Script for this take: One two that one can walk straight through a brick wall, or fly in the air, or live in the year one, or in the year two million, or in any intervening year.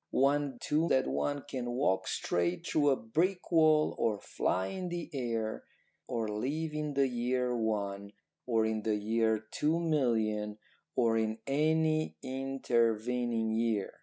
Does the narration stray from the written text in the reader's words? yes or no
no